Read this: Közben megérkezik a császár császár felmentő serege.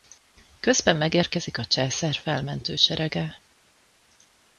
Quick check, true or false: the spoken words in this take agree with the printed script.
false